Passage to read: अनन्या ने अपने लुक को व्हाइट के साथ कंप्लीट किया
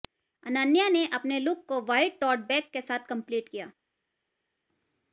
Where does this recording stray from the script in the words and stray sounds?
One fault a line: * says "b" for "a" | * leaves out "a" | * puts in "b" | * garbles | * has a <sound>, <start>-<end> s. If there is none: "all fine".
* puts in "टोट बैग"